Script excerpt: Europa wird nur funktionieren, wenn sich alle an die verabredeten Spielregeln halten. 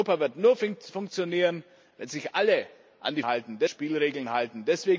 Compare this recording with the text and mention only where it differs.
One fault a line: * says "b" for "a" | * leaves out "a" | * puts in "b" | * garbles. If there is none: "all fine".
* says "halten" for "verabredeten"